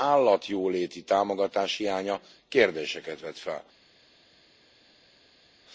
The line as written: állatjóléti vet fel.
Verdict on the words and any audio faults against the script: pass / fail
fail